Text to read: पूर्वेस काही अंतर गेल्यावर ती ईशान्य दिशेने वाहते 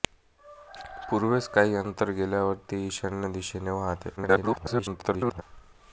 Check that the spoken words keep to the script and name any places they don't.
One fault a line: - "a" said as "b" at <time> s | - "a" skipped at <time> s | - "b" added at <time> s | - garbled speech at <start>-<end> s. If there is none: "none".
- garbled speech at 4.2-5.4 s